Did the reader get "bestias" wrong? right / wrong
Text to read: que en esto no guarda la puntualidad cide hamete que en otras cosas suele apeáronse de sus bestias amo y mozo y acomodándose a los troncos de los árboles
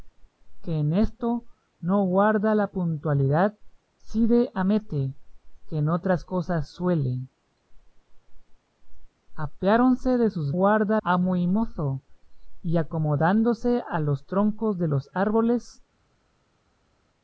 wrong